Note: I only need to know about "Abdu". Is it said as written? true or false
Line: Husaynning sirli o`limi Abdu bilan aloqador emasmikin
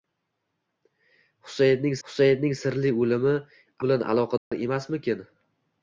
false